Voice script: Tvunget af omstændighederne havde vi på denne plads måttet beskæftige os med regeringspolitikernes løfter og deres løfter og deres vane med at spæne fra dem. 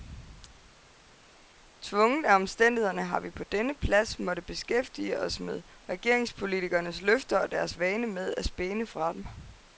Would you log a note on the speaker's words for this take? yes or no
yes